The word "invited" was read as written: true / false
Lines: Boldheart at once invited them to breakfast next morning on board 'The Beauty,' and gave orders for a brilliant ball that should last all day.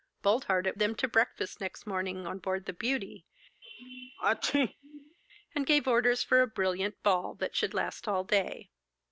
false